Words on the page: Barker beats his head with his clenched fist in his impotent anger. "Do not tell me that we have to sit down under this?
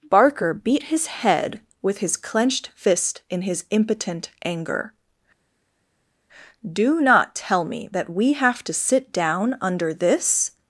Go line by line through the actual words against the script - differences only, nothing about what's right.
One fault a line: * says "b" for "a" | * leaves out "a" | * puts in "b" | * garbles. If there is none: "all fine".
* says "beat" for "beats"